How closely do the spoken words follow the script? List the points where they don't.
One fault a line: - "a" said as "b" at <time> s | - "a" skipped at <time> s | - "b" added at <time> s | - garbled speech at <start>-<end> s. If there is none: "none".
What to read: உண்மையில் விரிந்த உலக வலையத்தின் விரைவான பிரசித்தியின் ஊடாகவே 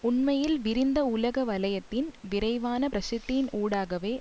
none